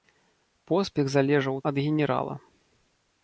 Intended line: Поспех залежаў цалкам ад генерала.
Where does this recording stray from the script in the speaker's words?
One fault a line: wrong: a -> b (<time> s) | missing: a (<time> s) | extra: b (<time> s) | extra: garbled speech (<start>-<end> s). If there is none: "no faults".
missing: цалкам (1.6 s)